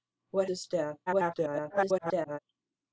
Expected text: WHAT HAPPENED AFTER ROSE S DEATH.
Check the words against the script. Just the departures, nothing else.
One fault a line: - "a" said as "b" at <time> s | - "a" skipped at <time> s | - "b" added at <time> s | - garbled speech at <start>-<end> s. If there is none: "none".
- "HAPPENED AFTER ROSE" skipped at 0.5 s
- garbled speech at 1.1-2.4 s